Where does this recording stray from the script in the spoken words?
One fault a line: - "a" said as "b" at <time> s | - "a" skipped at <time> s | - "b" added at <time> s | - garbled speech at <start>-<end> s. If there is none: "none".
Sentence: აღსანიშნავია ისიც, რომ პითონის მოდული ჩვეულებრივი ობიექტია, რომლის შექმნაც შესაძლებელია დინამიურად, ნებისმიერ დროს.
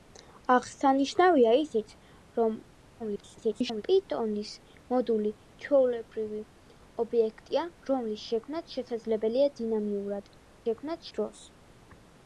- garbled speech at 3.0-3.8 s
- "ნებისმიერ" said as "შექმნაც" at 10.7 s